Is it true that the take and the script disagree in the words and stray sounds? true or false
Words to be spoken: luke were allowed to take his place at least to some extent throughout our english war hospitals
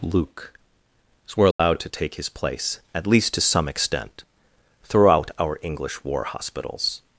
true